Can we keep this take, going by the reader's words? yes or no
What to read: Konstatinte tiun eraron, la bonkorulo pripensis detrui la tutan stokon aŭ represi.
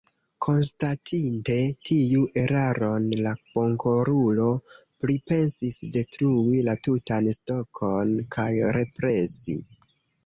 no